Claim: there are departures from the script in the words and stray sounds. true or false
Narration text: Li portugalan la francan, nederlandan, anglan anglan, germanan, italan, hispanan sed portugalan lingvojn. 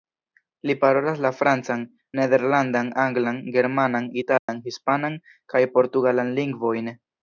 true